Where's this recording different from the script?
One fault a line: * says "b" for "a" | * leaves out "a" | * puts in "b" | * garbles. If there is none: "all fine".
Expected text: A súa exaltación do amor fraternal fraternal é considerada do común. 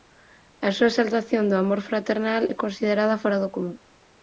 * leaves out "fraternal"
* puts in "fóra"